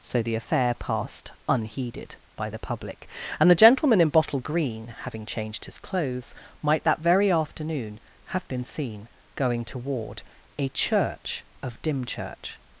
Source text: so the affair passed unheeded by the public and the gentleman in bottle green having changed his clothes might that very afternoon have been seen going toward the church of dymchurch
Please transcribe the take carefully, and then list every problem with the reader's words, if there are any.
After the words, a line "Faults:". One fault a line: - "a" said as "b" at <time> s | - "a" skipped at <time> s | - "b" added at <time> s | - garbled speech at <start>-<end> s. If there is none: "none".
so the affair passed unheeded by the public and the gentleman in bottle green having changed his clothes might that very afternoon have been seen going toward a church of dymchurch
Faults:
- "the" said as "a" at 10.6 s